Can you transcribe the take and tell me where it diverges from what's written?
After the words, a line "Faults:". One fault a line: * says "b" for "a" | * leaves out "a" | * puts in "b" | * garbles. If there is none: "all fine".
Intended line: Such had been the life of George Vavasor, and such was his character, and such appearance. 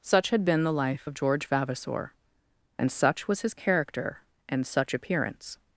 Such had been the life of George Vavasor, and such was his character, and such appearance.
Faults:
all fine